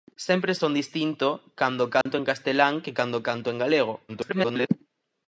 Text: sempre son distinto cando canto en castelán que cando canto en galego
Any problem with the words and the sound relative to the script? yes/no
yes